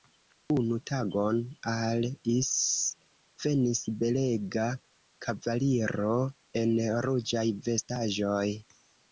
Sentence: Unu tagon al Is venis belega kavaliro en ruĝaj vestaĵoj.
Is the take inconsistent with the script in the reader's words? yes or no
no